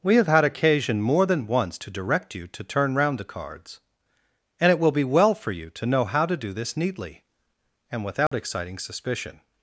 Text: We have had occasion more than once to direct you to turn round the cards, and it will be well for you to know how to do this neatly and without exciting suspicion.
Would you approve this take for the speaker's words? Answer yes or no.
yes